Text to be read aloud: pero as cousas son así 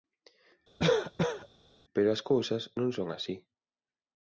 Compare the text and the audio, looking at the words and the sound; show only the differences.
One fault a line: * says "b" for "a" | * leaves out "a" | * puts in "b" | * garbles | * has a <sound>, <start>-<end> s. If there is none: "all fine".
* has a cough, 0.8-1.5 s
* puts in "non"